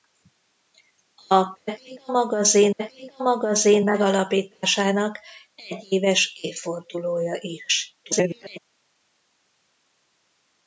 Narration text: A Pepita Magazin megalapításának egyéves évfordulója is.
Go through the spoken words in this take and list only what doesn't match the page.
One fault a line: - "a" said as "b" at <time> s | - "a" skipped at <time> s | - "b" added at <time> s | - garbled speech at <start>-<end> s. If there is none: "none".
- "Pepita Magazin" added at 2.7 s
- garbled speech at 8.0-8.6 s